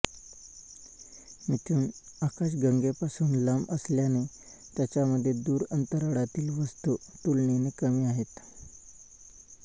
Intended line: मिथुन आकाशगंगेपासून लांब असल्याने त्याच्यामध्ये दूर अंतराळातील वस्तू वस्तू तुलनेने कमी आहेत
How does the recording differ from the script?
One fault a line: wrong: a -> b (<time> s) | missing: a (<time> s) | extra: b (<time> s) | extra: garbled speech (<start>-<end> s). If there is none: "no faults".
missing: वस्तू (7.0 s)